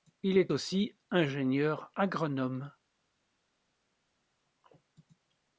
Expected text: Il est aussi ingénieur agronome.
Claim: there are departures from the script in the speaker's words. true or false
false